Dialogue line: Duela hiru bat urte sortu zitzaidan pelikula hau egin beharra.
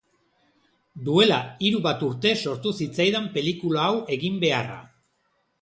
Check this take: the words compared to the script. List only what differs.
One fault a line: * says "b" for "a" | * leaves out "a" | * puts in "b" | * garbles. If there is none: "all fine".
all fine